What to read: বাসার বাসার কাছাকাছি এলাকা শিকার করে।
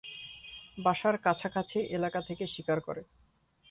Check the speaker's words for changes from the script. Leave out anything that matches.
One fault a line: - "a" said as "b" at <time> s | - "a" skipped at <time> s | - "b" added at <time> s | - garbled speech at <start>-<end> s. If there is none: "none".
- "বাসার" skipped at 1.1 s
- "থেকে" added at 2.3 s